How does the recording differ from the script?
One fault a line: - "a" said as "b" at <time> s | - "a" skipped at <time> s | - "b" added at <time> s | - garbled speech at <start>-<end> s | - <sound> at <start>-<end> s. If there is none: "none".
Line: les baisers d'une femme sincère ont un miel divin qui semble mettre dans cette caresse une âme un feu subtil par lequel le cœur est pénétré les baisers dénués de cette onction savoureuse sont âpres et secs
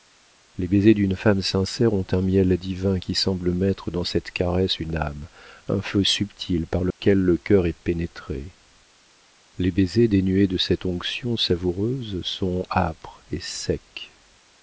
- dropout at 6.9-7.0 s